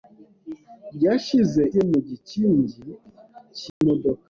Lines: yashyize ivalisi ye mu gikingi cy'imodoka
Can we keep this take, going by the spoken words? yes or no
no